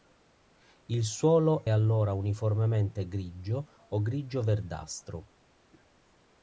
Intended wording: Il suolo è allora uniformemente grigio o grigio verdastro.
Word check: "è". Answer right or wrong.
wrong